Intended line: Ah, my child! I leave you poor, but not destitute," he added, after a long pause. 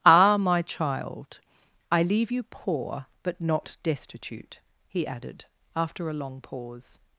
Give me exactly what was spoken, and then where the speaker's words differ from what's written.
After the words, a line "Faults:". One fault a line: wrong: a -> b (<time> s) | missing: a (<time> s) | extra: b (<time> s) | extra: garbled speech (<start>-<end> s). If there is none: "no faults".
Ah, my child! I leave you poor, but not destitute," he added, after a long pause.
Faults:
no faults